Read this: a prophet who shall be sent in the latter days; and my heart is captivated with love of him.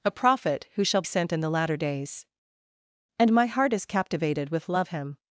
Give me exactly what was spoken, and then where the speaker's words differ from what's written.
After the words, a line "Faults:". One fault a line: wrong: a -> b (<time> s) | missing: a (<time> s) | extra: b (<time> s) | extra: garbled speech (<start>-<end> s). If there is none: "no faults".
a prophet who shall sent in the latter days; and my heart is captivated with love him.
Faults:
missing: be (1.0 s)
missing: of (4.9 s)